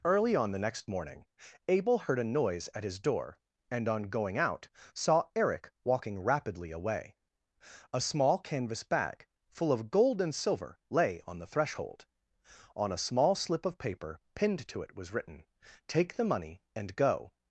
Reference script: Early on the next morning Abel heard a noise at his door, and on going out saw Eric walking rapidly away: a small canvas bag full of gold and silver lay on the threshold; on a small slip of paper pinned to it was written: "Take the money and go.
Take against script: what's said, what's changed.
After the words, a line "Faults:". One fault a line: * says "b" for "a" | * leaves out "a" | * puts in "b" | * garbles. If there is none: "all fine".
Early on the next morning Abel heard a noise at his door, and on going out saw Eric walking rapidly away: a small canvas bag full of gold and silver lay on the threshold; on a small slip of paper pinned to it was written: "Take the money and go.
Faults:
all fine